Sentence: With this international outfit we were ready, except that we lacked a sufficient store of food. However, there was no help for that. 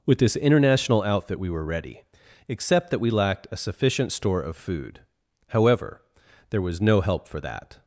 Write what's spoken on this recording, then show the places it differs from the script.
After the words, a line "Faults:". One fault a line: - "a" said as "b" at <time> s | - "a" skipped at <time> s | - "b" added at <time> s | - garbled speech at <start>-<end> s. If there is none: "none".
With this international outfit we were ready, except that we lacked a sufficient store of food. However, there was no help for that.
Faults:
none